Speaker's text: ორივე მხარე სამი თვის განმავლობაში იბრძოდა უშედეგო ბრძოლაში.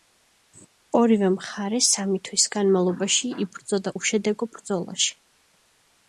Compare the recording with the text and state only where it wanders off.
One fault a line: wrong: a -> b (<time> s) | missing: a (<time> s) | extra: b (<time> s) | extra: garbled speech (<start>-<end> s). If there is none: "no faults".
no faults